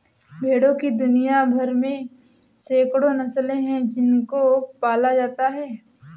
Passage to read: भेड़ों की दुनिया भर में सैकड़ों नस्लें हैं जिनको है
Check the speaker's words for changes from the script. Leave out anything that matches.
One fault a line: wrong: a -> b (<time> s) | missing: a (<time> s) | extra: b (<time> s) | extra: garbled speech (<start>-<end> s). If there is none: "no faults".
extra: पाला जाता (4.8 s)